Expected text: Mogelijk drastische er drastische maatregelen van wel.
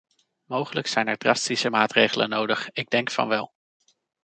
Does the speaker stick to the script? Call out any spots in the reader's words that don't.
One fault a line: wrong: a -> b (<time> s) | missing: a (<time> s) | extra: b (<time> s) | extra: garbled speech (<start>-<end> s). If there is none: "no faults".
wrong: drastische -> zijn (0.9 s)
extra: nodig ik denk (2.3 s)